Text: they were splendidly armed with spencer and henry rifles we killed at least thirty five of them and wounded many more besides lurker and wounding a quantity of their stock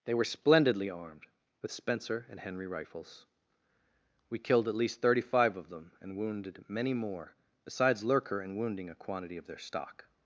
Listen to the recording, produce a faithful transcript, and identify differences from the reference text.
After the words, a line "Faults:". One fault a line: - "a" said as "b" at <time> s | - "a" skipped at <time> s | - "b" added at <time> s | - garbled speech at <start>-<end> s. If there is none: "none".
they were splendidly armed with spencer and henry rifles we killed at least thirty five of them and wounded many more besides lurker and wounding a quantity of their stock
Faults:
none